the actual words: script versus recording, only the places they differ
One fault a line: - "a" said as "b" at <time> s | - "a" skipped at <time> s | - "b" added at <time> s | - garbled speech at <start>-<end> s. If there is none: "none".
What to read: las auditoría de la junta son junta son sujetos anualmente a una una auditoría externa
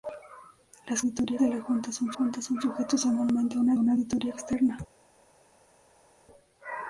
none